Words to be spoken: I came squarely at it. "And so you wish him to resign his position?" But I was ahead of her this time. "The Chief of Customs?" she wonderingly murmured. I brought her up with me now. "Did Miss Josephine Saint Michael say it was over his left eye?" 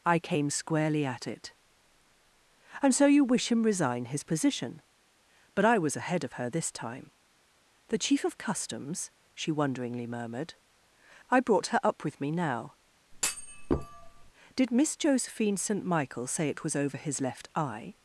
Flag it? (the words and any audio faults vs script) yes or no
yes